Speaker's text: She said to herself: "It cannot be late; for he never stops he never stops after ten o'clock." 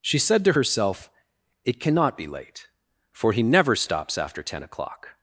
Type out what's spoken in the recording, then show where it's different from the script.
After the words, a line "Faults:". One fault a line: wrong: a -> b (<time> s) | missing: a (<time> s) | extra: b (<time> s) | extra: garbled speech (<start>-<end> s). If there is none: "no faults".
She said to herself: "It cannot be late; for he never stops after ten o'clock."
Faults:
missing: he never stops (4.2 s)